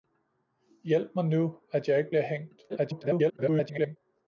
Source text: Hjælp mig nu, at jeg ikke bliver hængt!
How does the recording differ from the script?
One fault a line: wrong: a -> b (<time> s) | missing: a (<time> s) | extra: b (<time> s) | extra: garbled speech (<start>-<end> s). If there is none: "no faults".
extra: garbled speech (2.7-4.0 s)